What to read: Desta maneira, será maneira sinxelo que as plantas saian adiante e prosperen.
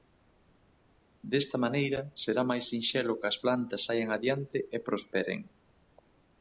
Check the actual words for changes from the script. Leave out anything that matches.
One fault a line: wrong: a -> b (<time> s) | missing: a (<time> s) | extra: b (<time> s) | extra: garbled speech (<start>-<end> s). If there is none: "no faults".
wrong: maneira -> máis (2.5 s)